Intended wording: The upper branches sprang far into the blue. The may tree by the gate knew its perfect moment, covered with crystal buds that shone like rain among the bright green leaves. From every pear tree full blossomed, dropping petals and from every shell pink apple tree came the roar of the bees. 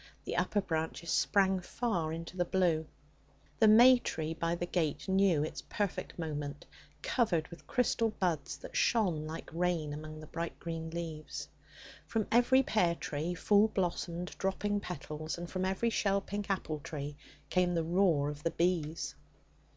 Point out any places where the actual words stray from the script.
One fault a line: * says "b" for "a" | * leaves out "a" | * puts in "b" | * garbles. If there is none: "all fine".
all fine